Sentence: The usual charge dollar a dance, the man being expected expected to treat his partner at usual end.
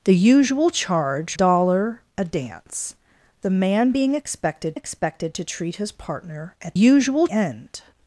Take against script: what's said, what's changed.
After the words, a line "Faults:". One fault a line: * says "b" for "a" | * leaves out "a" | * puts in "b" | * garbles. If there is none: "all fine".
The usual charge dollar a dance, the man being expected expected to treat his partner at usual end.
Faults:
all fine